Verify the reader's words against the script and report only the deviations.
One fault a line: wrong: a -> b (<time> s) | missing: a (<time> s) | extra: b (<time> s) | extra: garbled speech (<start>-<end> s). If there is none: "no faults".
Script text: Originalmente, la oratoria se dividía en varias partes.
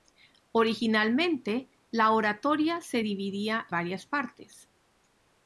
missing: en (3.7 s)